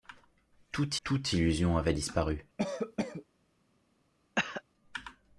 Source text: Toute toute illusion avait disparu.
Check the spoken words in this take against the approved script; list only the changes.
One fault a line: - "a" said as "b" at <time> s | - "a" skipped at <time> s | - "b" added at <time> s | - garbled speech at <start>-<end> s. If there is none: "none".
none